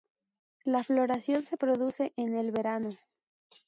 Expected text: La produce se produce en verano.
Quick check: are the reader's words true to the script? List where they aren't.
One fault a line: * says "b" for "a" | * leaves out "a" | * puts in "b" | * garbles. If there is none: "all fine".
* says "floración" for "produce"
* puts in "el"